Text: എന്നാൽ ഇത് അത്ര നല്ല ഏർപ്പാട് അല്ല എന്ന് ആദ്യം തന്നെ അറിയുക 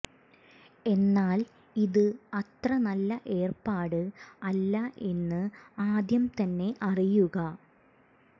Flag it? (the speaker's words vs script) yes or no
no